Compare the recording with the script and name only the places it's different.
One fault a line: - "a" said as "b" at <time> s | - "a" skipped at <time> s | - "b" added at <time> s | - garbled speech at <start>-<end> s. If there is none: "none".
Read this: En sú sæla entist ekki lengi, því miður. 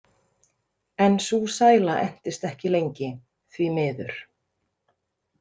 none